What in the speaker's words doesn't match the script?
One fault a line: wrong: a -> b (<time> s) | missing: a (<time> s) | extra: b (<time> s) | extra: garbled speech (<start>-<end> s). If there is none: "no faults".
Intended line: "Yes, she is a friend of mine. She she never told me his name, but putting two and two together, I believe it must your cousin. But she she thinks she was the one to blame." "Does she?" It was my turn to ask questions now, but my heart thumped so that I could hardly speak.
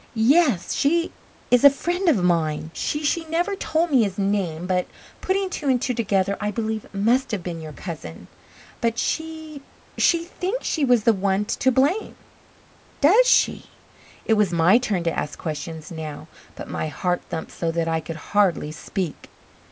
extra: have been (7.3 s)